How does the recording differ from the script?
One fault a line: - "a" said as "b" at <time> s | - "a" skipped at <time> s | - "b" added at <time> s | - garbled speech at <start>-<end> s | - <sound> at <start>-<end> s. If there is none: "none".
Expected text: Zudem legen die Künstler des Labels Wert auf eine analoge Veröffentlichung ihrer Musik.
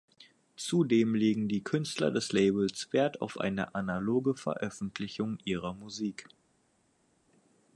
none